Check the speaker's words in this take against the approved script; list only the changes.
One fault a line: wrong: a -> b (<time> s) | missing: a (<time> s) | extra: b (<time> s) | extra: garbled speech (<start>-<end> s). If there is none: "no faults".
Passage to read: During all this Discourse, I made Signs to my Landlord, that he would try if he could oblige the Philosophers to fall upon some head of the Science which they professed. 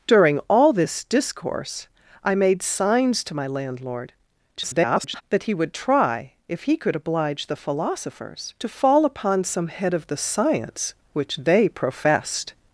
extra: garbled speech (4.6-5.2 s)